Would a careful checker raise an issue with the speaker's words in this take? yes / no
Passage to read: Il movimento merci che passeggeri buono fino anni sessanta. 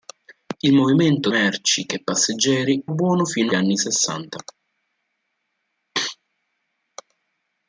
no